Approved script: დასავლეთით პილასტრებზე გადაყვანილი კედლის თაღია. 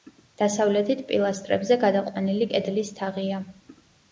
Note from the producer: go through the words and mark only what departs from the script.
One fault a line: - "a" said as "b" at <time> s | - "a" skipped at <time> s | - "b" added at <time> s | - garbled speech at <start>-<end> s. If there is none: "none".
none